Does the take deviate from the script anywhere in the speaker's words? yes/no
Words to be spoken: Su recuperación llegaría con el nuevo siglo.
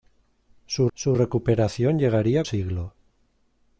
yes